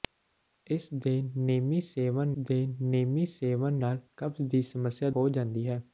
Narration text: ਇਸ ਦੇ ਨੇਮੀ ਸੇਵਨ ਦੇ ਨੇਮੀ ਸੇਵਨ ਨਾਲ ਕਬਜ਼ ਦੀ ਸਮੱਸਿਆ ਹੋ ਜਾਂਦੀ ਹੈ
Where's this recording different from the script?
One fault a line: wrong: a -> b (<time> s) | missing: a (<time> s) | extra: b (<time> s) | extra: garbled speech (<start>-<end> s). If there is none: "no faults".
no faults